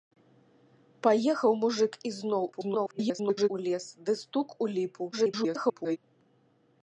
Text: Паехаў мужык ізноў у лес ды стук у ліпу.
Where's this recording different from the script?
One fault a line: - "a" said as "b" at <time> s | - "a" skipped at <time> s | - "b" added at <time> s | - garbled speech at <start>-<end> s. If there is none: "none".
- garbled speech at 2.5-3.5 s
- garbled speech at 5.1-6.0 s